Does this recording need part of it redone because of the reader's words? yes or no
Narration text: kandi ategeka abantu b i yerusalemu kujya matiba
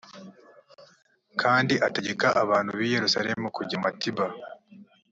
no